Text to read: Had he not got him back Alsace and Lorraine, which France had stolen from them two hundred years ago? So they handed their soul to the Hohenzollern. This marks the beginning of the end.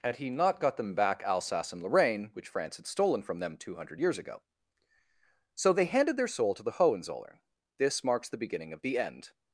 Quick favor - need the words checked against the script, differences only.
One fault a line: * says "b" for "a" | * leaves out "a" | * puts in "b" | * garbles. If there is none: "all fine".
* says "them" for "him"